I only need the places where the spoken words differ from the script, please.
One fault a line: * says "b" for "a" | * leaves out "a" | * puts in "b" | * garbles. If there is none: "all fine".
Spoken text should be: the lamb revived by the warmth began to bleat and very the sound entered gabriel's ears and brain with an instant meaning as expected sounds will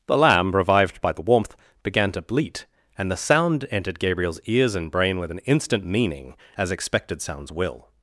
* leaves out "very"